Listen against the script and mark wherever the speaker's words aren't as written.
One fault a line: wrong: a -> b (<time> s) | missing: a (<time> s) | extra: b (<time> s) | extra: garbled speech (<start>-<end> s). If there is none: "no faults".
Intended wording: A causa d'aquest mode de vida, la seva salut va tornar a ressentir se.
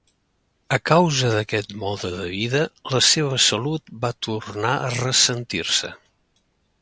no faults